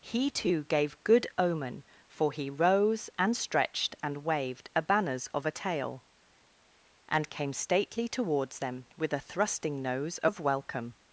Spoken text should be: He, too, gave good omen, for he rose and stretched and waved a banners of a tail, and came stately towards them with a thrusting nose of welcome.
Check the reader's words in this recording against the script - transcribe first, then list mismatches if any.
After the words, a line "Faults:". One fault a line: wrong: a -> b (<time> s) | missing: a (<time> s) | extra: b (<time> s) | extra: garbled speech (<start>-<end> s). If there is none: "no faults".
He, too, gave good omen, for he rose and stretched and waved a banners of a tail, and came stately towards them with a thrusting nose of welcome.
Faults:
no faults